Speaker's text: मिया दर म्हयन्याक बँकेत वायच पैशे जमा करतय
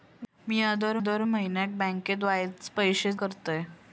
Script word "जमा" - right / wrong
wrong